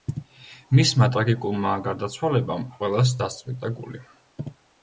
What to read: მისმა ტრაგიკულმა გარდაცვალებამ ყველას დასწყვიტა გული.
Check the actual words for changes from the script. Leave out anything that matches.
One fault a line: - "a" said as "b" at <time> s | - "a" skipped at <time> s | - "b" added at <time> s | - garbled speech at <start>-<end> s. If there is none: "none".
none